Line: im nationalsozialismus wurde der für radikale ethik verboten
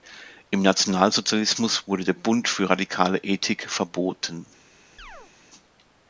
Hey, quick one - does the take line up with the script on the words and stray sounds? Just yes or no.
no